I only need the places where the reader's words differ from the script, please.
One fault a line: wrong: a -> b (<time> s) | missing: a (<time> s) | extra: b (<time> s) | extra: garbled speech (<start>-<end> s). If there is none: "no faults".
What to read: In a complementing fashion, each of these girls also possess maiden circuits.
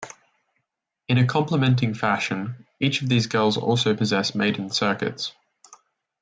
no faults